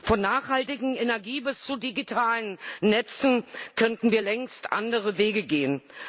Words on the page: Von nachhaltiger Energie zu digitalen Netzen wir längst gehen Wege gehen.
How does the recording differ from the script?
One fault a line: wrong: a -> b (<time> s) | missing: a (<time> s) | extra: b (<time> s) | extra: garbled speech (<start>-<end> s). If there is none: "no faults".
extra: bis (1.4 s)
extra: könnten (3.8 s)
wrong: gehen -> andere (4.7 s)